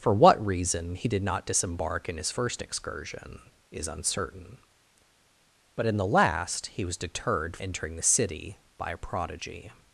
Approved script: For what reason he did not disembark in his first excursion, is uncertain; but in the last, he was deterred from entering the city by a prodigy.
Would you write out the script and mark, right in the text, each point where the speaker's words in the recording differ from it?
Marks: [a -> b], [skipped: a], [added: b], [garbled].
For what reason he did not disembark in his first excursion, is uncertain; but in the last, he was deterred [skipped: from] entering the city by a prodigy.